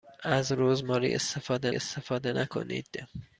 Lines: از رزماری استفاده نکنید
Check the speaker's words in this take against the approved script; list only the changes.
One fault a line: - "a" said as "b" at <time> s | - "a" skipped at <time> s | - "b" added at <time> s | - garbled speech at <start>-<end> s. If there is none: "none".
- "استفاده" added at 1.7 s